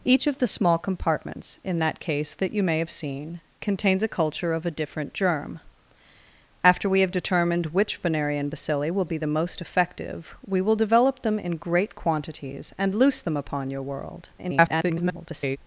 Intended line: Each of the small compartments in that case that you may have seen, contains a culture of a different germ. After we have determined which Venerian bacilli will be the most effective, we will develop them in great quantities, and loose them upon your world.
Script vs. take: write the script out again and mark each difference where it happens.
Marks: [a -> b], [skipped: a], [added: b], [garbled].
Each of the small compartments in that case that you may have seen, contains a culture of a different germ. After we have determined which Venerian bacilli will be the most effective, we will develop them in great quantities, and loose them upon your world. [garbled]